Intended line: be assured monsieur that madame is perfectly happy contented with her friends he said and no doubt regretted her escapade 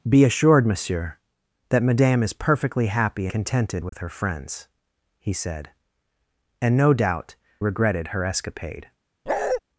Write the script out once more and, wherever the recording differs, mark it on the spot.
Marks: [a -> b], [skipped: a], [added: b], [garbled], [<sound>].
be assured monsieur that madame is perfectly happy contented with [dropout] her friends he said and no doubt regretted her escapade [bark]